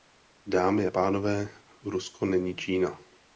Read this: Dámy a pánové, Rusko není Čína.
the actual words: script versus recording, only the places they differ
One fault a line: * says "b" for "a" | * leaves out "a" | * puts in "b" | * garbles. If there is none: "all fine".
all fine